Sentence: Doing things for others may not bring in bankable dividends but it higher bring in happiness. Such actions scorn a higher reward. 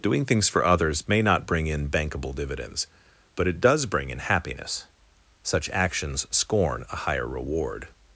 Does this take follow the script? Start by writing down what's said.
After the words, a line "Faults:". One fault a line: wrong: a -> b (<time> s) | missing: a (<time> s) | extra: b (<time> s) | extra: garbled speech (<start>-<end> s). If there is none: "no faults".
Doing things for others may not bring in bankable dividends but it does bring in happiness. Such actions scorn a higher reward.
Faults:
wrong: higher -> does (3.6 s)